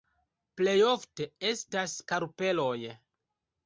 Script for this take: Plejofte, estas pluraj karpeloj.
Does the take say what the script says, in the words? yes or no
no